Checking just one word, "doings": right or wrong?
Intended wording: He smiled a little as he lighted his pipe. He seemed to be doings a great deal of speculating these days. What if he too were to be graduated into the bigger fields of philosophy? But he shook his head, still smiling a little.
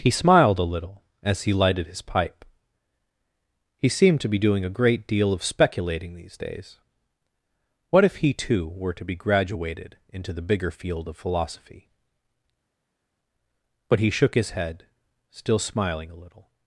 wrong